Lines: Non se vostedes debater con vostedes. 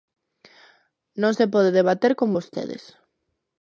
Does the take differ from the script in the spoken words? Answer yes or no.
yes